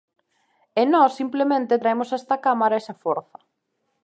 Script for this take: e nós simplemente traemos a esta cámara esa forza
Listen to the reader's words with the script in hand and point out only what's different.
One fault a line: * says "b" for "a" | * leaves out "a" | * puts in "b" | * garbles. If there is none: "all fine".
all fine